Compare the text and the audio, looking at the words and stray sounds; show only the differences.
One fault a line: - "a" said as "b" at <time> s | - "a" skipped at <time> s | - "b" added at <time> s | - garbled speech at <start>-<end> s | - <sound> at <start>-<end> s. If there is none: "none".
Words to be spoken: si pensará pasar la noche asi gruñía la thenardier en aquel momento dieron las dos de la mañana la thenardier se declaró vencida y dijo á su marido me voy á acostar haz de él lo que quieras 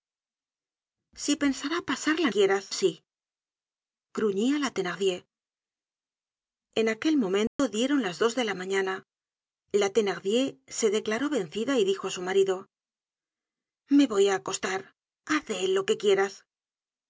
- "noche" said as "quieras" at 2.3 s
- dropout at 7.5-7.6 s